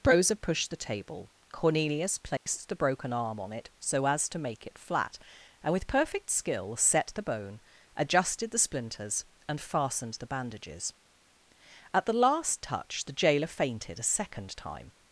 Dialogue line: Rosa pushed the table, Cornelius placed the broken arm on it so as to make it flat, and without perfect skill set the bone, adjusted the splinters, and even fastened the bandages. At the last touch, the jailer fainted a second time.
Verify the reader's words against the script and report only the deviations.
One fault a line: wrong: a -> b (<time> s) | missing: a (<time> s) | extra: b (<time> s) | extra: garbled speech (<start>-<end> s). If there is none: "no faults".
wrong: without -> with (5.7 s)
missing: even (9.6 s)